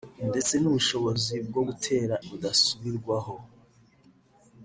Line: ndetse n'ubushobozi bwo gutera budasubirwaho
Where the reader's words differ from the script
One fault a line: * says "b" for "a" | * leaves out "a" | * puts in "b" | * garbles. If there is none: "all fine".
all fine